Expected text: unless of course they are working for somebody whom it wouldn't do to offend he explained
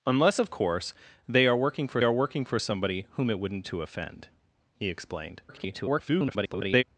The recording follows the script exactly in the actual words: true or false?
false